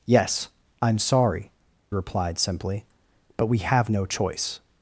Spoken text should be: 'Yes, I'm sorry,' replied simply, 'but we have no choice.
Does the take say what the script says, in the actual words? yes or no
yes